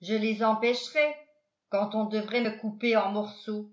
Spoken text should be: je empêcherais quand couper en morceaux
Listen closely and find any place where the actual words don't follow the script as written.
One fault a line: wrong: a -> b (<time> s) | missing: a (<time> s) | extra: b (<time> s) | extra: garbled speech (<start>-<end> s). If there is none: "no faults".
extra: les (0.1 s)
extra: on devrait me (1.9 s)